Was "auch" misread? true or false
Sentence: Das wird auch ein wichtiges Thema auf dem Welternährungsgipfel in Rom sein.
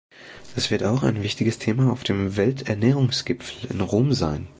false